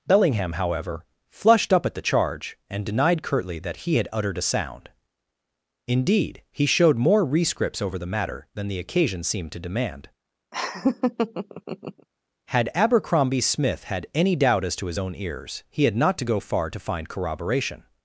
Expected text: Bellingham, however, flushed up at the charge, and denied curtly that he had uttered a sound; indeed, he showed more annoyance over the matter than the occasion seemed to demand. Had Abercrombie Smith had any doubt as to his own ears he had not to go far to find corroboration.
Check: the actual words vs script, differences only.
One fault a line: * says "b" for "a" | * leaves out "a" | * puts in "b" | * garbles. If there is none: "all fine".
* says "rescripts" for "annoyance"